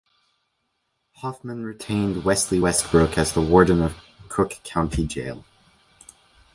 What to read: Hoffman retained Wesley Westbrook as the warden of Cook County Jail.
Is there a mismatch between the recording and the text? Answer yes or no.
no